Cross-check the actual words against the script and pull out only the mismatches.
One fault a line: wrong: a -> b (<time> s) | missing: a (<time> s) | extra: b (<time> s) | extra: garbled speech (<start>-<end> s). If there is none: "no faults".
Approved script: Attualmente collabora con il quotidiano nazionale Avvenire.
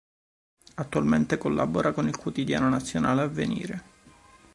no faults